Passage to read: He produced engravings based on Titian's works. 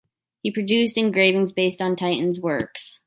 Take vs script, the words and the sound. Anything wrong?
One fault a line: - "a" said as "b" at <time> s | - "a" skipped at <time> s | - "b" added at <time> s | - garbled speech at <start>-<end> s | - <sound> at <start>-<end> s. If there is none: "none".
none